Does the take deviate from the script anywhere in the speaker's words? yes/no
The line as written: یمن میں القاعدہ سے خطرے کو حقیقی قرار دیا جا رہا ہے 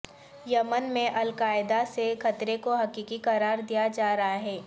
no